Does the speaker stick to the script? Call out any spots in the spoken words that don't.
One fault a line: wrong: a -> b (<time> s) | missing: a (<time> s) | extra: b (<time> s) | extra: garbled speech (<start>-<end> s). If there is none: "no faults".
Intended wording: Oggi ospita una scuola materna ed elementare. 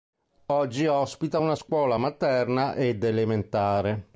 no faults